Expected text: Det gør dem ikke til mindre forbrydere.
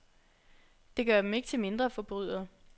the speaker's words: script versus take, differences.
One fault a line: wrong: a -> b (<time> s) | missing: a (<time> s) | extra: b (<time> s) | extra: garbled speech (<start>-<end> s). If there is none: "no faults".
no faults